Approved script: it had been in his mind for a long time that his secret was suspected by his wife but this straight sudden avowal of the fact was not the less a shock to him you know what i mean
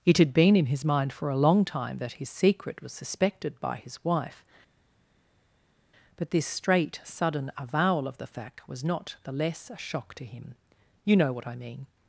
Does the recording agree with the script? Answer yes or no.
yes